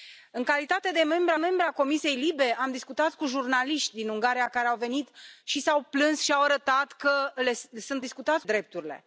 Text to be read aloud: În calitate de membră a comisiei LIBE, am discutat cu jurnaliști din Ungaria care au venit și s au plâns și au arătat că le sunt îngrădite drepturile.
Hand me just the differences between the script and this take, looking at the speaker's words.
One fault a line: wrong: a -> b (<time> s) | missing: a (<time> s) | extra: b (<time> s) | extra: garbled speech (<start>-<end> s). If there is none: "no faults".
extra: membră (1.3 s)
wrong: îngrădite -> discutat (8.0 s)